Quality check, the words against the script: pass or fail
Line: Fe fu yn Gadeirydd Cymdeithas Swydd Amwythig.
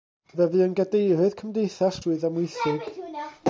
pass